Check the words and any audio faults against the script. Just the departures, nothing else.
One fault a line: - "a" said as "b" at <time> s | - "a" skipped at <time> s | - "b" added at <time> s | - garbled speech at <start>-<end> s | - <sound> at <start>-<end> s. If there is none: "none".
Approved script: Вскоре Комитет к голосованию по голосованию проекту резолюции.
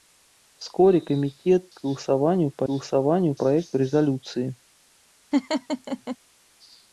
- laugh at 5.3-6.2 s